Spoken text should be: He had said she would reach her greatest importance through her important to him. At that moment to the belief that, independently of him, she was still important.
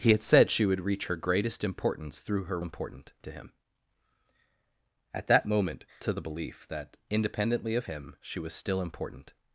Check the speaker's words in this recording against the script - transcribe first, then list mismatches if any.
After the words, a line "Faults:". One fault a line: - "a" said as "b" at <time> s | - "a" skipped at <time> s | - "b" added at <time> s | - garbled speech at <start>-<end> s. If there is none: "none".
He had said she would reach her greatest importance through her important to him. At that moment to the belief that, independently of him, she was still important.
Faults:
none